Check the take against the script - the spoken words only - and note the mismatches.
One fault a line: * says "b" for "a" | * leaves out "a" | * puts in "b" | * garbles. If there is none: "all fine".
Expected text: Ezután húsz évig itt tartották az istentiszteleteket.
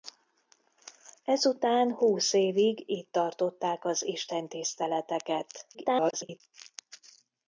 * garbles